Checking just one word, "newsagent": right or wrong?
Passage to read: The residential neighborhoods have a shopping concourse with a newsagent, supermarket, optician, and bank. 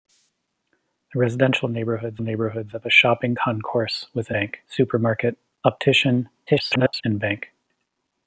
wrong